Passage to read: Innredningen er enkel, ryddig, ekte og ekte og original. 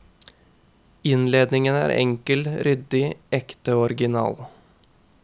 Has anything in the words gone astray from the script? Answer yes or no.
yes